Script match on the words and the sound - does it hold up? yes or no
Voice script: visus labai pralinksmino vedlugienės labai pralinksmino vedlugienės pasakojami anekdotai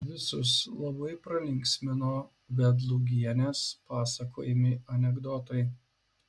no